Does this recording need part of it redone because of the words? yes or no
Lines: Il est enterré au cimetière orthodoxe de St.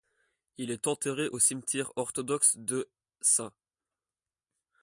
no